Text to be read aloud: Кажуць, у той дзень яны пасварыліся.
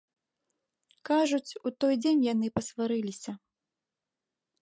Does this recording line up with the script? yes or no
yes